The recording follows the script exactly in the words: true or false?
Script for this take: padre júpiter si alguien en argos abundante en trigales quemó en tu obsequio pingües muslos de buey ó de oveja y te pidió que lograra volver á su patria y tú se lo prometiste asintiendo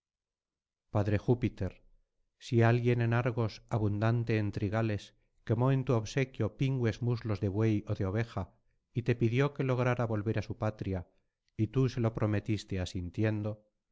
true